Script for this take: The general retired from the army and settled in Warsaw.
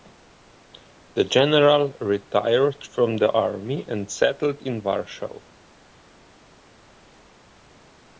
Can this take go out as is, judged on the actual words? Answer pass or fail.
pass